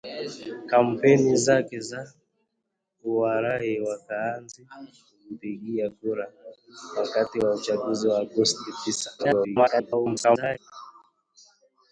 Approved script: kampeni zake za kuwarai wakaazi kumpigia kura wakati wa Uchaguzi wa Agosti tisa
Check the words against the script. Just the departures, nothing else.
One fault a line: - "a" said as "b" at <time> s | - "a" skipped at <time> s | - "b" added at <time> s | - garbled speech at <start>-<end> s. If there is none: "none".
- garbled speech at 9.2-10.6 s